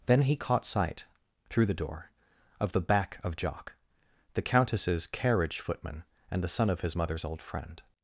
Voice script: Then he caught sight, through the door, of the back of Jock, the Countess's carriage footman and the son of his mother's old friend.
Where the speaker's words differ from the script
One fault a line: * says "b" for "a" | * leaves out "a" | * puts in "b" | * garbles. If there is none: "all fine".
all fine